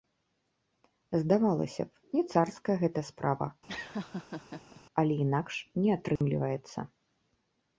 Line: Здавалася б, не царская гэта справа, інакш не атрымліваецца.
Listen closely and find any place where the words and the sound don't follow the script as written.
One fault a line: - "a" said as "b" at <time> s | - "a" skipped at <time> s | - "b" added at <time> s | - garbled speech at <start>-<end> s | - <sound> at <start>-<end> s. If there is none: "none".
- laugh at 3.7-4.8 s
- "але" added at 5.0 s
- dropout at 6.2-6.2 s